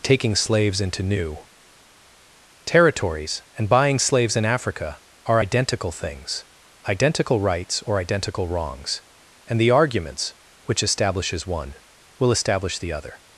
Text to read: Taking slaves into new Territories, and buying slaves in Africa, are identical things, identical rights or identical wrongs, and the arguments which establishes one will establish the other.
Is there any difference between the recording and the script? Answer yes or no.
no